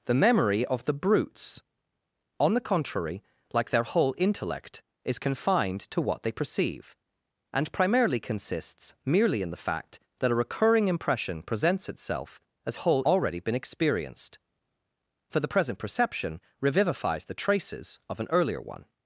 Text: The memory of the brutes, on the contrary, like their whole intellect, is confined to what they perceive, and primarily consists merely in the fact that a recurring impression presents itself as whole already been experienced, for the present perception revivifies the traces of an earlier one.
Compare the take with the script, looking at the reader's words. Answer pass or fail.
pass